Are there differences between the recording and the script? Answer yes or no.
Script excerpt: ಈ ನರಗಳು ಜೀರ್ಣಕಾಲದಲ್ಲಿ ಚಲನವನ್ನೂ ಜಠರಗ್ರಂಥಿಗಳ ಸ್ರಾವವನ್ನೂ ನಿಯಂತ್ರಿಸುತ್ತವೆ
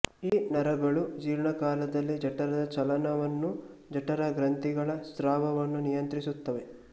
yes